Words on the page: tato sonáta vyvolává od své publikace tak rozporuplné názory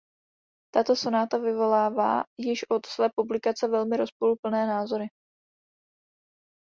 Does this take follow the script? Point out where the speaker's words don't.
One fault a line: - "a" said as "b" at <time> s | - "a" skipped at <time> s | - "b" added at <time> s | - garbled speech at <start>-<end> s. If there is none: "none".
- "již" added at 2.4 s
- "tak" said as "velmi" at 3.7 s